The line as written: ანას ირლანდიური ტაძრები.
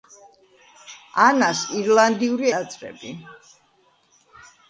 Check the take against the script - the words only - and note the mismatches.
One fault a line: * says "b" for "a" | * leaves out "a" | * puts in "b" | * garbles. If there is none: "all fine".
all fine